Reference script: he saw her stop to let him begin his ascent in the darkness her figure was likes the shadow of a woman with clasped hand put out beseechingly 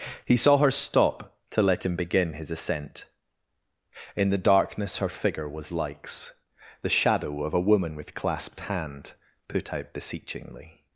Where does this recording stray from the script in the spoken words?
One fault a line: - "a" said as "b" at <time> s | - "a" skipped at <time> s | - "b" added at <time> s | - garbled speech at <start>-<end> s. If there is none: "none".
none